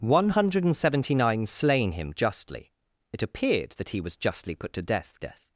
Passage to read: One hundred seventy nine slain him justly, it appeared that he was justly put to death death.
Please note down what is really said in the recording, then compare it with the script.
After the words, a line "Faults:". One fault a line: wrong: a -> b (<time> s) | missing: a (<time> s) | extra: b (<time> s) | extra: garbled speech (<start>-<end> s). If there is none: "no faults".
One hundred seventy nine slain him justly, it appeared that he was justly put to death death.
Faults:
no faults